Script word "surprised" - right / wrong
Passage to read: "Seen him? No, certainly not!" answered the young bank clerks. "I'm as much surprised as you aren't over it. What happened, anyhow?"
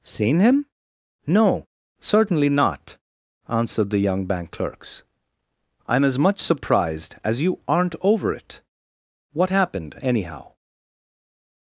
right